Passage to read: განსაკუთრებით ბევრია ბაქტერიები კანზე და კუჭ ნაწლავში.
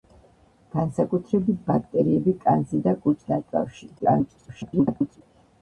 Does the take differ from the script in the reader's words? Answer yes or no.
yes